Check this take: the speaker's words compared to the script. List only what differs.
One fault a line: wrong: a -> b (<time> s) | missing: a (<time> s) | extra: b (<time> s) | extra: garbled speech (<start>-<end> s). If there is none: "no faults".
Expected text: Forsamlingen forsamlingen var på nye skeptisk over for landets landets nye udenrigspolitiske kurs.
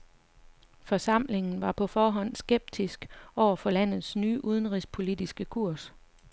missing: forsamlingen (1.6 s)
wrong: nye -> forhånd (1.8 s)
missing: landets (4.2 s)